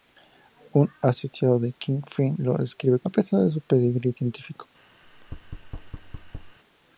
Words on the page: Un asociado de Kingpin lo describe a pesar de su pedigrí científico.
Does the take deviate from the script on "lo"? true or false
false